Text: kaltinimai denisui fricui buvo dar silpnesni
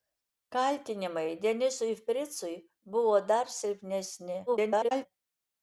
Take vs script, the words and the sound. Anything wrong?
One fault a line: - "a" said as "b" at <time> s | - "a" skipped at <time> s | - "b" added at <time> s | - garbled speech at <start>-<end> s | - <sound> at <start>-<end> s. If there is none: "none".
- garbled speech at 4.5-5.1 s